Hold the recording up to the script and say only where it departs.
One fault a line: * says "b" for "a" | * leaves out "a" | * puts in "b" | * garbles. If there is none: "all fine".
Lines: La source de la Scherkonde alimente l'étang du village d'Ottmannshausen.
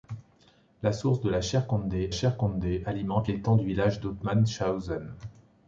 * puts in "Scherkonde"